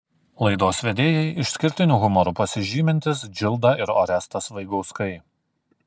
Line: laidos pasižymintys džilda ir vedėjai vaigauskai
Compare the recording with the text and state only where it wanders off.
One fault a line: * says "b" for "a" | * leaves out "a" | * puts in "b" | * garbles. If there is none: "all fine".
* puts in "vedėjai išskirtiniu humoru"
* says "orestas" for "vedėjai"